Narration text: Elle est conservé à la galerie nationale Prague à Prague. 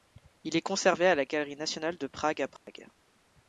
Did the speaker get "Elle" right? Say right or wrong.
wrong